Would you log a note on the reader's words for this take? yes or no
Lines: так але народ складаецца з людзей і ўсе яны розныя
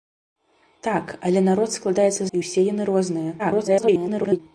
yes